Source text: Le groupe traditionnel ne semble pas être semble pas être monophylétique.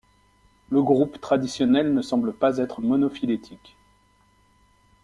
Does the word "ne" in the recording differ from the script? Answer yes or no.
no